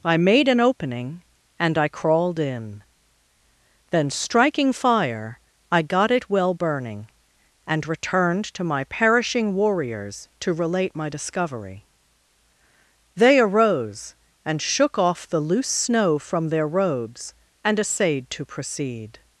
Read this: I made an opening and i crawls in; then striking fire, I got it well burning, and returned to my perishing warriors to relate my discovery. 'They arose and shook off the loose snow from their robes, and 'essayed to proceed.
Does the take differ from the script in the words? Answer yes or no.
yes